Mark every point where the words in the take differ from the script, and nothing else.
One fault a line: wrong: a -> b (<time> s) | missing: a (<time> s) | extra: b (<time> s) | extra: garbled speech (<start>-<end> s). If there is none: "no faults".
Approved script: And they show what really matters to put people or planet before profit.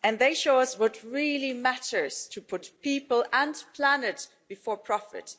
extra: us (0.6 s)
wrong: or -> and (3.3 s)